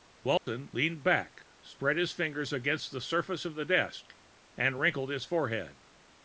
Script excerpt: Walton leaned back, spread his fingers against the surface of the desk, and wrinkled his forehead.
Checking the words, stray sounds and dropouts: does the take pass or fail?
fail